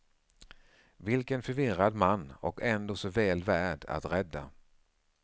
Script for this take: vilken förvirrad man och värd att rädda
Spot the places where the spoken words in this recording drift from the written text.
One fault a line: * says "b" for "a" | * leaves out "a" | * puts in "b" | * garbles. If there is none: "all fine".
* puts in "ändå så väl"